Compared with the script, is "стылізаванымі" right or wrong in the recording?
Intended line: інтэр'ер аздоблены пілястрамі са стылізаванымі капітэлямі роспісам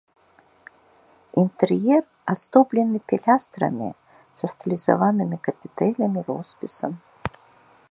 right